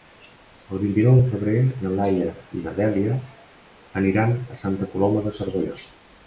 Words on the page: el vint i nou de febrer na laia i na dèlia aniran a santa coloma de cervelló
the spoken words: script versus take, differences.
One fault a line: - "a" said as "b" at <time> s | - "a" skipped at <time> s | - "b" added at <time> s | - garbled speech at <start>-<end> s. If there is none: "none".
none